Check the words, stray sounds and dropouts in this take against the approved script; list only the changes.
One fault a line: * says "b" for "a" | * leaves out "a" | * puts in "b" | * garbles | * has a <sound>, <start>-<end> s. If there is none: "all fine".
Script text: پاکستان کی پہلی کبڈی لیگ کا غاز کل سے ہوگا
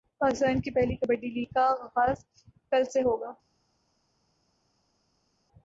all fine